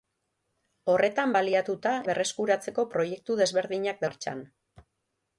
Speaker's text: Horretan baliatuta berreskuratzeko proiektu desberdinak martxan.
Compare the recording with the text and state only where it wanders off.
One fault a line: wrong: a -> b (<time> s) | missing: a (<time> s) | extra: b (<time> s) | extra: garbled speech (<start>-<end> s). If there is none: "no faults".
no faults